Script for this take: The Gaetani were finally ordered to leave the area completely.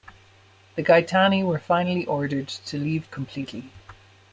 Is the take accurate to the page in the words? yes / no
no